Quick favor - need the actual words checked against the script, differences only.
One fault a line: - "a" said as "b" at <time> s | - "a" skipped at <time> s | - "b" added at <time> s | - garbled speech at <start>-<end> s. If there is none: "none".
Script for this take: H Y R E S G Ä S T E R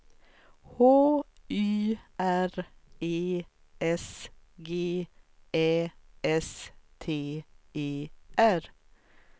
none